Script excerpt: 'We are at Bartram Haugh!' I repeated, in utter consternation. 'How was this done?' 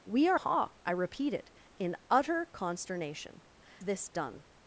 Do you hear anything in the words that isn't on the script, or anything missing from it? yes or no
yes